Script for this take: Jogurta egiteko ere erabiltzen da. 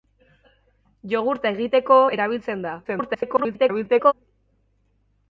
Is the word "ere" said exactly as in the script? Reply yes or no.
no